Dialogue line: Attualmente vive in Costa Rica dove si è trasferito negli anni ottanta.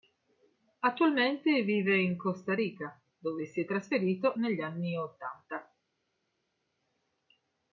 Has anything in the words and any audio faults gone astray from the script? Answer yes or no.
no